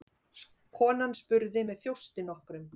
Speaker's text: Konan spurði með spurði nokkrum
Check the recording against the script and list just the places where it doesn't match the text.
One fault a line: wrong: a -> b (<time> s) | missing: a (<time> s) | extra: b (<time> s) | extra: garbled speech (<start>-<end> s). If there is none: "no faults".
wrong: spurði -> þjósti (1.9 s)